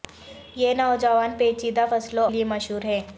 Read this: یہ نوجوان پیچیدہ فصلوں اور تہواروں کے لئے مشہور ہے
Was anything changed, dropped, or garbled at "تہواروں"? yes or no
yes